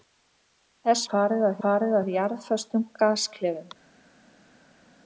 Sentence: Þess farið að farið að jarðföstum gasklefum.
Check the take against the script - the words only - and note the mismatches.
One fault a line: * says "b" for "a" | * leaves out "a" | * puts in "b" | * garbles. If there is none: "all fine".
all fine